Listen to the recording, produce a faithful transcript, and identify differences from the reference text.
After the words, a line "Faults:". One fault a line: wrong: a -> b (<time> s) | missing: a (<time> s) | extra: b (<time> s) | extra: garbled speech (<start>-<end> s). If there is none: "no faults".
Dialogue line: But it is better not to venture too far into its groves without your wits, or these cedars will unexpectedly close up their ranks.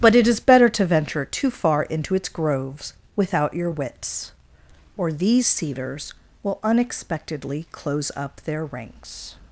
But it is better to venture too far into its groves without your wits, or these cedars will unexpectedly close up their ranks.
Faults:
missing: not (0.7 s)